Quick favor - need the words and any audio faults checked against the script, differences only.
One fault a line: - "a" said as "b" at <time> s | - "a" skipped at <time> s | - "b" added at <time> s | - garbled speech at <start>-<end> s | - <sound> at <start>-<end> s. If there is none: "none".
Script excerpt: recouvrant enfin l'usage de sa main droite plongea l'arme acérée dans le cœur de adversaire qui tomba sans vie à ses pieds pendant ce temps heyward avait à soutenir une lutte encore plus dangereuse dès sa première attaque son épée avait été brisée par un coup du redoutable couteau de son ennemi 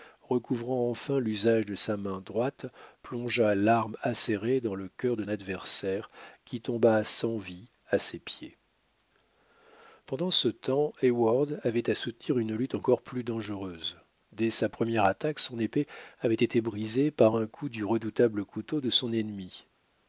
none